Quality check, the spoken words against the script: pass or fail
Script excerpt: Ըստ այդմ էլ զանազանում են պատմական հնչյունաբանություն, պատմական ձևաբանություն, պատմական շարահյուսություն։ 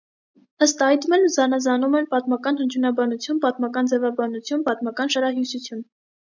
pass